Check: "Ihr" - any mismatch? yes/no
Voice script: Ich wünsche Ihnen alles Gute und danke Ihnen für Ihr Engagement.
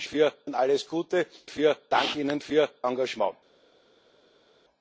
yes